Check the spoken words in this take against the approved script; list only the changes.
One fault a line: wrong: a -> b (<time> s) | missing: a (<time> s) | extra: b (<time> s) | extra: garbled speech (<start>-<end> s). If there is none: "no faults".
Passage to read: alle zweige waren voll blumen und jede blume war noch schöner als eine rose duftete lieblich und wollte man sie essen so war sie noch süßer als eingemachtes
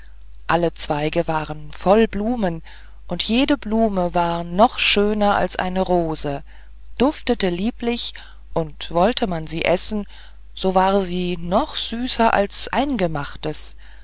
no faults